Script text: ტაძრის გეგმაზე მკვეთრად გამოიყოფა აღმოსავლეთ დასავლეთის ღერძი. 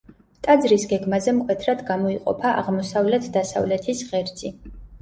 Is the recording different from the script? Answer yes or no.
no